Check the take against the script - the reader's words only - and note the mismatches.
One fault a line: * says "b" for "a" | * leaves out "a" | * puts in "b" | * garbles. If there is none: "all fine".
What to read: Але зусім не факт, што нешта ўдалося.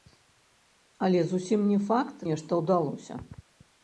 * leaves out "што"